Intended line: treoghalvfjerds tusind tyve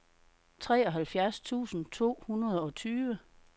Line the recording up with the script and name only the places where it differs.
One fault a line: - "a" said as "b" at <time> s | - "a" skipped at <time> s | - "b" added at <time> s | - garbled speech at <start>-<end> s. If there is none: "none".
- "to hundrede og" added at 1.9 s